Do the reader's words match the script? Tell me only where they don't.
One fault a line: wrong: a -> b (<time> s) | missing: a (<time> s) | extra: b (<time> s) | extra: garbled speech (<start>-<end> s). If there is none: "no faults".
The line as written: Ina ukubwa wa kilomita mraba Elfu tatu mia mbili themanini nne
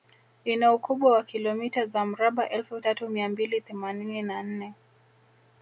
extra: za (1.9 s)
extra: na (4.2 s)